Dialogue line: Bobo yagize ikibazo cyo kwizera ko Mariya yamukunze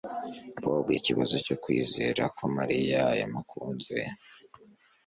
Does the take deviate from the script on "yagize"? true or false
true